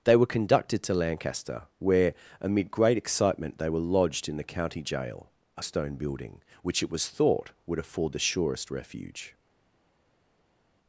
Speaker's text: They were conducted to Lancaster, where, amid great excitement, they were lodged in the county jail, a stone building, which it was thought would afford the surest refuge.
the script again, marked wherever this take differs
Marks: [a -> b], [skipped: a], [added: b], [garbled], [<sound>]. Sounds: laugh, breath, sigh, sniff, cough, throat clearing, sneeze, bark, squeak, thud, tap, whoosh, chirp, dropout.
They were conducted to Lancaster, where, amid great excitement, they were lodged in the county jail, a stone building, which it was thought would afford the surest refuge.